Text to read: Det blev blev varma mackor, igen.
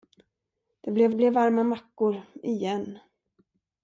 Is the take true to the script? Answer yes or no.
yes